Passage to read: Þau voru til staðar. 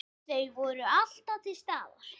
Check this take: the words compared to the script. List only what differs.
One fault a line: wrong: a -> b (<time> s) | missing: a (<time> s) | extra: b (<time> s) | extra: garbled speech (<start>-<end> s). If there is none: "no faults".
extra: alltaf (1.0 s)